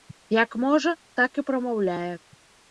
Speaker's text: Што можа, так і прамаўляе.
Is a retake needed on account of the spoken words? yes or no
yes